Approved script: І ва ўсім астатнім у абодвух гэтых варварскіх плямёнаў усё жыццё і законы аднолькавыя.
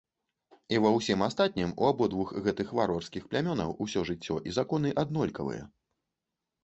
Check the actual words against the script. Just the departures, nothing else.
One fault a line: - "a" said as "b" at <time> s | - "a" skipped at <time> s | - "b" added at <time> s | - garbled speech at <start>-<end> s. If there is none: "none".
none